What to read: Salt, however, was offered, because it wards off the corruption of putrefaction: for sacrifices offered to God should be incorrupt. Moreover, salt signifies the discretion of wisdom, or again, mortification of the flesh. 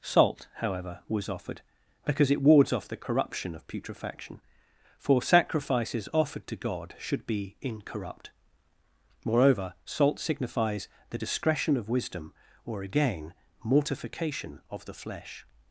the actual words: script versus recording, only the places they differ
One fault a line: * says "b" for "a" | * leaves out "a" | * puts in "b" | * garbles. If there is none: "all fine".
all fine